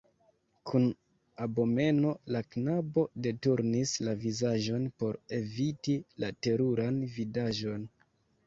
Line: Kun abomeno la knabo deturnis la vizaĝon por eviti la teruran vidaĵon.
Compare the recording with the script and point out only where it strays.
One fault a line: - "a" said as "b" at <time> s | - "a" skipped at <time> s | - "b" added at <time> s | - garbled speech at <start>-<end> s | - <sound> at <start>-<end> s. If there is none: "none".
none